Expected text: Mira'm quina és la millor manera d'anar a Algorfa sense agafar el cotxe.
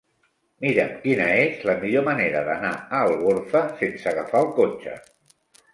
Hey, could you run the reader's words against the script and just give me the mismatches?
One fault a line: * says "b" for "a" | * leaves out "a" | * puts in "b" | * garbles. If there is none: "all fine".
all fine